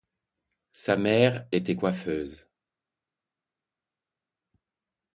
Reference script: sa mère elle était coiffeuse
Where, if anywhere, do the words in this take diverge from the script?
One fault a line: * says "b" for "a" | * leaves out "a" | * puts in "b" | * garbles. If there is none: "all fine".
* leaves out "elle"